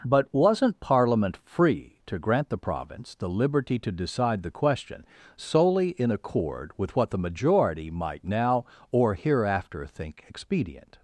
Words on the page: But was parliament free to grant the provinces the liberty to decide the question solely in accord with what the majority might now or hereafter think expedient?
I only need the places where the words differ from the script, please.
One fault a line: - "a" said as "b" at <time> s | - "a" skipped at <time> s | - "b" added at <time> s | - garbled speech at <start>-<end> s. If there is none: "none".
- "was" said as "wasn't" at 0.3 s
- "provinces" said as "province" at 2.6 s